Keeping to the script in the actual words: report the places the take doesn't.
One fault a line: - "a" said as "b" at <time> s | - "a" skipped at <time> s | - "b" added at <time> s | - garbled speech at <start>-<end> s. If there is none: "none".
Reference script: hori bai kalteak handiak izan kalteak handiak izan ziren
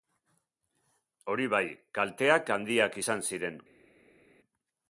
- "kalteak handiak izan" skipped at 3.3 s